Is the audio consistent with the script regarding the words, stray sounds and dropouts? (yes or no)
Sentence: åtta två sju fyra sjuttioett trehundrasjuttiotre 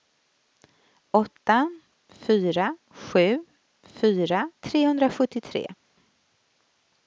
no